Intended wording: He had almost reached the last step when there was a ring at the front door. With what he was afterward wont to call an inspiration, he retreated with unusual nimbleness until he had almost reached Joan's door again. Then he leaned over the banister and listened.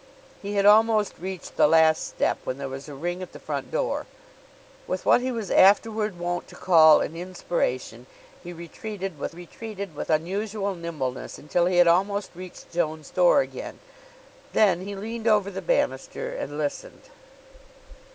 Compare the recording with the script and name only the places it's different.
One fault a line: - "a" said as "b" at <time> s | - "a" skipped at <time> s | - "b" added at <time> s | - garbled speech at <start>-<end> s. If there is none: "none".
- "retreated with" added at 9.3 s